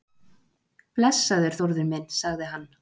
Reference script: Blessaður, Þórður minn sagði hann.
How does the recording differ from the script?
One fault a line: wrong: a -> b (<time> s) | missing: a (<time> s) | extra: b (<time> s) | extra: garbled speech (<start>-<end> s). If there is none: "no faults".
no faults